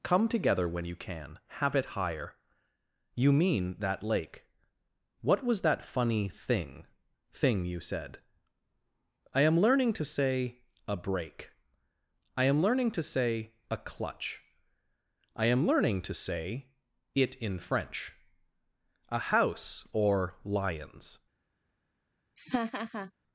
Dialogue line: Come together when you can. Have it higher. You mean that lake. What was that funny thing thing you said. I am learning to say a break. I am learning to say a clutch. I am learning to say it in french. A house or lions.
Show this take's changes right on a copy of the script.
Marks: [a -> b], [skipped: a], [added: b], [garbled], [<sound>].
Come together when you can. Have it higher. You mean that lake. What was that funny thing thing you said. I am learning to say a break. I am learning to say a clutch. I am learning to say it in french. A house or lions. [laugh]